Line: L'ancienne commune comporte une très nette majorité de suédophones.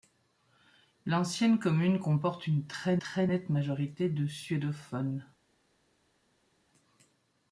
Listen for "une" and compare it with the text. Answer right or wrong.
right